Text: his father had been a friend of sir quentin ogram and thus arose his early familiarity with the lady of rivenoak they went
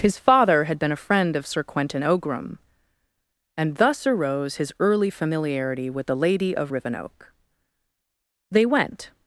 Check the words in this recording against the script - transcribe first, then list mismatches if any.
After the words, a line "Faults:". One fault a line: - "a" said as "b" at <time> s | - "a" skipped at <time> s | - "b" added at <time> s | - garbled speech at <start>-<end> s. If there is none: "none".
his father had been a friend of sir quentin ogram and thus arose his early familiarity with the lady of rivenoak they went
Faults:
none